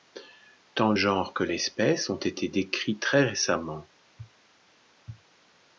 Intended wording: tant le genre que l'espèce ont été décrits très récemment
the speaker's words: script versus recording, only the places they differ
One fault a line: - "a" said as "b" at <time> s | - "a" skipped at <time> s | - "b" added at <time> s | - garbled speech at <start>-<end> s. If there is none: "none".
- "le" skipped at 0.9 s